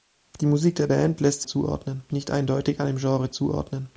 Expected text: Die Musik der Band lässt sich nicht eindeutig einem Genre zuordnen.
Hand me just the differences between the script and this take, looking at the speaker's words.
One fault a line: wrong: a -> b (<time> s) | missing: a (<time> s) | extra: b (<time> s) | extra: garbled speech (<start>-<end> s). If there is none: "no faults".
wrong: sich -> zuordnen (1.5 s)